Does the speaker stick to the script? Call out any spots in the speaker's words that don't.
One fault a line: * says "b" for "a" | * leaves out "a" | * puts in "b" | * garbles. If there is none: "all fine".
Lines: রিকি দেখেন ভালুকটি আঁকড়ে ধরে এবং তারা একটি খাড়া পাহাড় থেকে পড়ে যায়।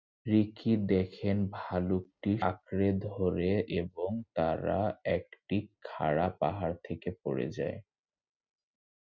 all fine